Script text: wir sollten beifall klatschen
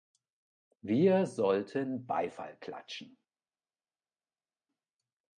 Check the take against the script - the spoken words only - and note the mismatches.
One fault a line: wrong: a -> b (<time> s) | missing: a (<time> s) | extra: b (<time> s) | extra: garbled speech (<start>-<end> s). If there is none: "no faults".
no faults